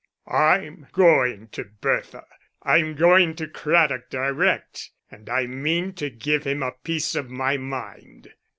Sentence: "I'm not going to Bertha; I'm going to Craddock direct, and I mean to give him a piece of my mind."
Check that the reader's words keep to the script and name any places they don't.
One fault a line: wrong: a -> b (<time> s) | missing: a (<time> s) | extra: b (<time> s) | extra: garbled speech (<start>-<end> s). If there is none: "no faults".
missing: not (0.9 s)